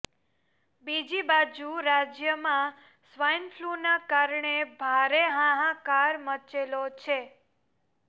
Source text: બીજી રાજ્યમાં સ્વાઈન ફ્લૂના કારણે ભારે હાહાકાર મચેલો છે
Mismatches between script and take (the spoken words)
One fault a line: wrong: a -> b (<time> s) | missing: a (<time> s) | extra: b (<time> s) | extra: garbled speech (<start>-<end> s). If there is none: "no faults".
extra: બાજુ (1.2 s)